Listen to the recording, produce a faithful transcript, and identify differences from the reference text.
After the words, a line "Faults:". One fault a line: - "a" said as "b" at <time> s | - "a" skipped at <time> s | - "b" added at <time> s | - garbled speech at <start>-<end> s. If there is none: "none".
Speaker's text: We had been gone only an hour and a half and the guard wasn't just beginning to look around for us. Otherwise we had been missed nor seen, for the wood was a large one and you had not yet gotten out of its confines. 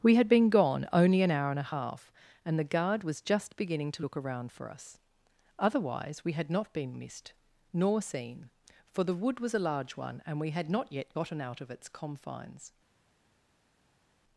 We had been gone only an hour and a half and the guard was just beginning to look around for us. Otherwise we had not been missed nor seen, for the wood was a large one and we had not yet gotten out of its confines.
Faults:
- "wasn't" said as "was" at 3.0 s
- "not" added at 6.5 s
- "you" said as "we" at 10.4 s